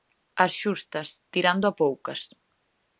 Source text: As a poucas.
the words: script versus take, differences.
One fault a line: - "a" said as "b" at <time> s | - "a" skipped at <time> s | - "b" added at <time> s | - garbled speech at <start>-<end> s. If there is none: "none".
- "xustas tirando" added at 0.6 s